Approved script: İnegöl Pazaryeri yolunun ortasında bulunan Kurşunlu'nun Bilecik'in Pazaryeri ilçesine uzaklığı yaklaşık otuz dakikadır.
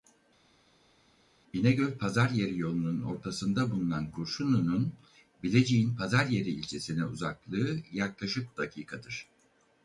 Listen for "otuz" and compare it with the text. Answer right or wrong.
wrong